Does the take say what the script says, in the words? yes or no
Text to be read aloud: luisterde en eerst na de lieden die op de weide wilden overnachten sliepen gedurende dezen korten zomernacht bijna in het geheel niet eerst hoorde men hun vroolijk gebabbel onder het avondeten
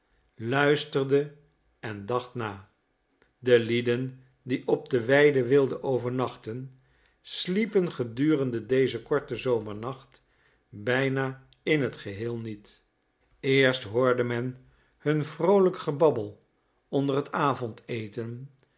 no